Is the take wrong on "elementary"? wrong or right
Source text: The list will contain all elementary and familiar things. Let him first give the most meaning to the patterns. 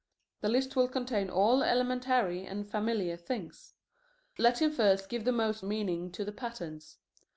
right